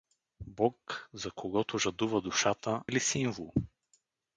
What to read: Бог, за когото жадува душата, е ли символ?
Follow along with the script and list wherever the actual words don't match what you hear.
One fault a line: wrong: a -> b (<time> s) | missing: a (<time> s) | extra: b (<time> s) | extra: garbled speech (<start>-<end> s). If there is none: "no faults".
no faults